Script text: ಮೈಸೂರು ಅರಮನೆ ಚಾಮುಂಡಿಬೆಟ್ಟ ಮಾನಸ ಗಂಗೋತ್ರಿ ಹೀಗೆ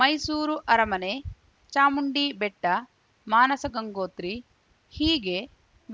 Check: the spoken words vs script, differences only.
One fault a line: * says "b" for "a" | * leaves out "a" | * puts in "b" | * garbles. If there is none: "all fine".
all fine